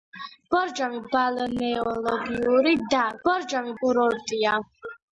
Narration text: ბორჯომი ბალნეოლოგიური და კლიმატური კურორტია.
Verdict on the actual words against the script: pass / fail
fail